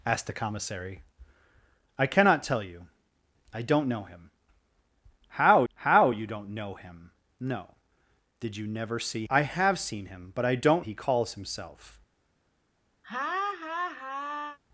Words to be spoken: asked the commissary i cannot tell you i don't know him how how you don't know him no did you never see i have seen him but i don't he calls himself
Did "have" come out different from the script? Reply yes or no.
no